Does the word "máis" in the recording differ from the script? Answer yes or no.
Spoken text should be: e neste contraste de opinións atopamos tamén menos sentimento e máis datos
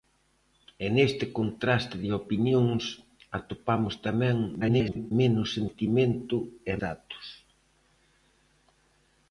yes